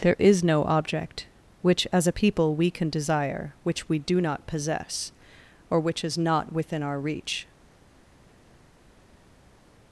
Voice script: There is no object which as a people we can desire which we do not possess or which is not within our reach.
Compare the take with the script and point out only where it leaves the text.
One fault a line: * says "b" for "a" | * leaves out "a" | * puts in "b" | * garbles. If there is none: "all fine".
all fine